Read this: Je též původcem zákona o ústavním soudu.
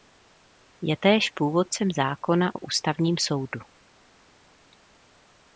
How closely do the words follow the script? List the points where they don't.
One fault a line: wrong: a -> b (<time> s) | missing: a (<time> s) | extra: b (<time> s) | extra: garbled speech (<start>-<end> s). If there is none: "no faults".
no faults